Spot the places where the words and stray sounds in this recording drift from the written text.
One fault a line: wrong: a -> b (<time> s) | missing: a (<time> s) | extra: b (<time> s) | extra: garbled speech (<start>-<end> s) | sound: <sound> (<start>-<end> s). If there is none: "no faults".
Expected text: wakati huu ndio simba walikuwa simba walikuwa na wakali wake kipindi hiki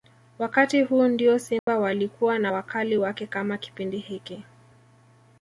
sound: dropout (1.6-1.7 s)
missing: simba walikuwa (2.4 s)
extra: kama (3.3 s)